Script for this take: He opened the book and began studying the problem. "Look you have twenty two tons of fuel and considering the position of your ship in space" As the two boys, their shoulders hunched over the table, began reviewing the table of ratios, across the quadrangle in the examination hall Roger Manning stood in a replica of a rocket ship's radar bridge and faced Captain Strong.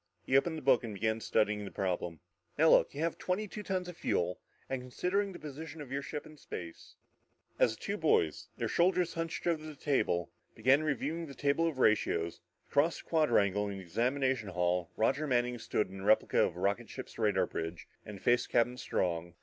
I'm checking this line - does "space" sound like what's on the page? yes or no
yes